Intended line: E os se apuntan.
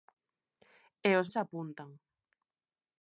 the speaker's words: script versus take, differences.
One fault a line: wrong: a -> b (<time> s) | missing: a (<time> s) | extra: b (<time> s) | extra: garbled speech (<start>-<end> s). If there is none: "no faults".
no faults